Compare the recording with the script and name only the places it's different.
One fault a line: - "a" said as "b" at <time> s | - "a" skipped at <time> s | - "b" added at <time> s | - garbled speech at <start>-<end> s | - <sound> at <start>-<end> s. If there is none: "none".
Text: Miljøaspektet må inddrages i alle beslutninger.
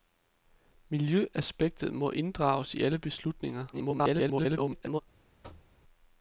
- garbled speech at 3.7-5.0 s
- thud at 5.4-5.8 s